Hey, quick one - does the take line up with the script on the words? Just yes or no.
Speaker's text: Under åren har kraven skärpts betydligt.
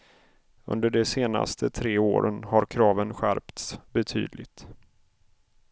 no